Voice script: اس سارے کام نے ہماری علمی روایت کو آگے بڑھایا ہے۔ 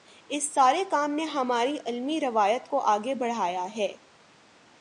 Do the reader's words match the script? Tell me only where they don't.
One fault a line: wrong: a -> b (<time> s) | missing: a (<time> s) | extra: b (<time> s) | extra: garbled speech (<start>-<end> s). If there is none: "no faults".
no faults